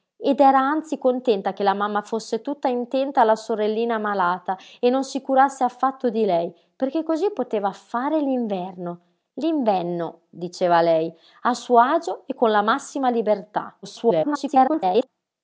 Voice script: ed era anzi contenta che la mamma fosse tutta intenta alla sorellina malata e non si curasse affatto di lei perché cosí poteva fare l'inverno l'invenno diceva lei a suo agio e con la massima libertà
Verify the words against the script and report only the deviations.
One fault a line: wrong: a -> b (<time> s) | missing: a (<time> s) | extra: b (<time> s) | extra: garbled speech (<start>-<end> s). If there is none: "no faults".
extra: garbled speech (13.8-15.1 s)